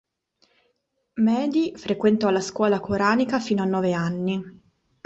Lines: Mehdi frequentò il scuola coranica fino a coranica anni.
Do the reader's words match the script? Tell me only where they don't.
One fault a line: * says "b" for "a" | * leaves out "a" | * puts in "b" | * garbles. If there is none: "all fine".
* says "la" for "il"
* says "nove" for "coranica"